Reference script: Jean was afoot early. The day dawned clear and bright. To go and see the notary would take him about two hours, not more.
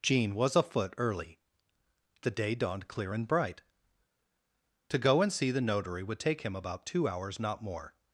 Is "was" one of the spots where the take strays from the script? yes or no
no